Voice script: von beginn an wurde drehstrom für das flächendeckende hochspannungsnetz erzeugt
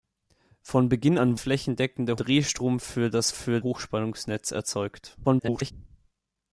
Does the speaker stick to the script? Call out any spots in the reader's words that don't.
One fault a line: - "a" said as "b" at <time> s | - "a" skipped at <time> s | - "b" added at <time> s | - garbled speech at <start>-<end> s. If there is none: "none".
- "wurde" said as "flächendeckende" at 1.4 s
- "flächendeckende" said as "für" at 3.3 s
- garbled speech at 5.2-5.7 s